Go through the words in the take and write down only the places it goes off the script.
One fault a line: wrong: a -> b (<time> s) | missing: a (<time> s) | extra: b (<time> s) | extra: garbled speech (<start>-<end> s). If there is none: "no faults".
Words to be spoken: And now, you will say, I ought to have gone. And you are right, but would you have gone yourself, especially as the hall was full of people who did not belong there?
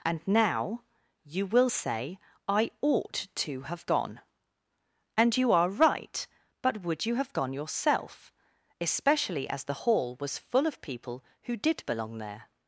missing: not (11.8 s)